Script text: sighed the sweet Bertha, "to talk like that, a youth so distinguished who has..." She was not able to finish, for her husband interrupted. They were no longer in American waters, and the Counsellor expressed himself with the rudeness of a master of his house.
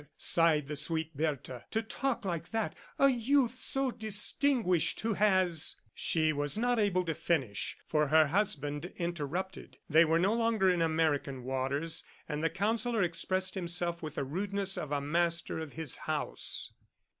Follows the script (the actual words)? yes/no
yes